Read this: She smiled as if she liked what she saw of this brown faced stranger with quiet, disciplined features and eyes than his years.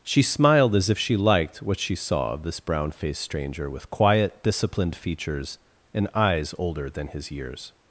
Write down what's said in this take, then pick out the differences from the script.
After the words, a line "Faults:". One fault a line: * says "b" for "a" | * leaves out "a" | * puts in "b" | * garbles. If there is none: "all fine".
She smiled as if she liked what she saw of this brown faced stranger with quiet, disciplined features and eyes older than his years.
Faults:
* puts in "older"